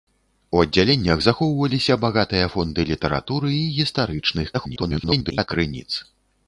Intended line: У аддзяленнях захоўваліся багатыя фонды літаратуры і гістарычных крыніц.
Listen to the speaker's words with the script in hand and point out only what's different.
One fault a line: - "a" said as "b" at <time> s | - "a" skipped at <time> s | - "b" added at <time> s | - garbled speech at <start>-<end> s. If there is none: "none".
- garbled speech at 4.5-5.5 s